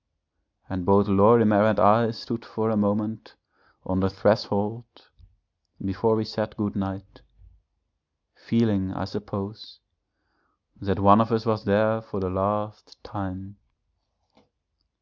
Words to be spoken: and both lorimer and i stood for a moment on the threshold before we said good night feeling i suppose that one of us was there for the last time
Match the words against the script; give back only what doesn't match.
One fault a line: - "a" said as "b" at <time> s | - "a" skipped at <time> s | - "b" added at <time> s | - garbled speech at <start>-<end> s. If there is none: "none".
none